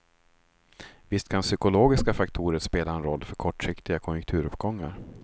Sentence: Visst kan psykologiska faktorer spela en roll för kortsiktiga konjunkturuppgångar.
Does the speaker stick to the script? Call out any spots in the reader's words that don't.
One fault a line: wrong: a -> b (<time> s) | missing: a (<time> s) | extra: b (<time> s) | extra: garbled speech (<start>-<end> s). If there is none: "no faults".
no faults